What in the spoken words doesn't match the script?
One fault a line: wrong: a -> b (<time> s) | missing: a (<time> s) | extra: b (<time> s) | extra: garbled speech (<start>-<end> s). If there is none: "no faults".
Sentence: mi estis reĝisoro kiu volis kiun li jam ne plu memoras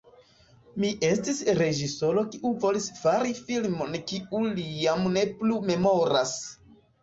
extra: fari filmon (3.0 s)